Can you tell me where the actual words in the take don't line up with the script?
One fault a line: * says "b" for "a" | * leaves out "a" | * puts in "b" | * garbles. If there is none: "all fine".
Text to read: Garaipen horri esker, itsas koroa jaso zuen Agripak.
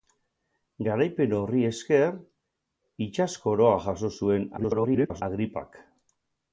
* garbles